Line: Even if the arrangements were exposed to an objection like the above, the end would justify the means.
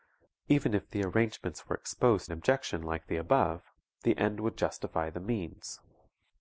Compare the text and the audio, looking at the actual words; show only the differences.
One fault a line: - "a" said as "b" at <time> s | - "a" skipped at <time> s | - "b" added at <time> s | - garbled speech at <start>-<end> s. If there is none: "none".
- "to" skipped at 2.3 s